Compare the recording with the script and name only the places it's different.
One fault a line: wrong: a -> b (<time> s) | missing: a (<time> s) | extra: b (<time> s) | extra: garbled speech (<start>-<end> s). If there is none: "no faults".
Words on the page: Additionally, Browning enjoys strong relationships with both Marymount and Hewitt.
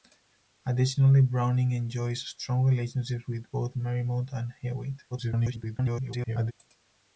extra: garbled speech (5.1-6.5 s)